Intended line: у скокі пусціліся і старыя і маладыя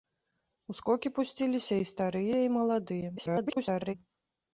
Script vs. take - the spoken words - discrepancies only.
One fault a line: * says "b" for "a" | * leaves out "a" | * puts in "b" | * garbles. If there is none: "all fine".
* garbles